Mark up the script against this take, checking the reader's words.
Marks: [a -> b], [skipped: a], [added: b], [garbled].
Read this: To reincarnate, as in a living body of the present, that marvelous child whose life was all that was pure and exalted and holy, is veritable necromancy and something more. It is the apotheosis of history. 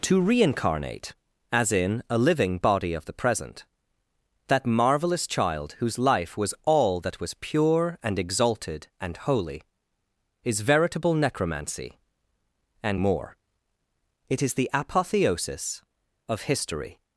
To reincarnate, as in a living body of the present, that marvelous child whose life was all that was pure and exalted and holy, is veritable necromancy and [skipped: something] more. It is the apotheosis of history.